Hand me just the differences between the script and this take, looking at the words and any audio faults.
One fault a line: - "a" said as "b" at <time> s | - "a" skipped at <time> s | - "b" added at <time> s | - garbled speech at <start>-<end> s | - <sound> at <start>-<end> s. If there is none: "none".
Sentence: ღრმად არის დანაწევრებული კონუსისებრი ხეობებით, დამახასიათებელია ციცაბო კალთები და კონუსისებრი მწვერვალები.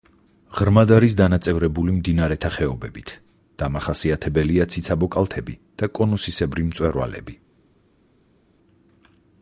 - "კონუსისებრი" said as "მდინარეთა" at 2.0 s